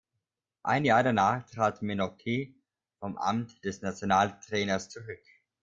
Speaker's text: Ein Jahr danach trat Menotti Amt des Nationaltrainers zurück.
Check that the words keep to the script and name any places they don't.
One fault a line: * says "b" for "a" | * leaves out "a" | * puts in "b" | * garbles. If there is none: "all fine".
* puts in "vom"